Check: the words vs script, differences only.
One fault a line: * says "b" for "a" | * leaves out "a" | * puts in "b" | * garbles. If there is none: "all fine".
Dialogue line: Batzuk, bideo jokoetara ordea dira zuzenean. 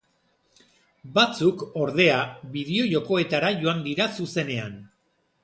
* puts in "ordea"
* says "joan" for "ordea"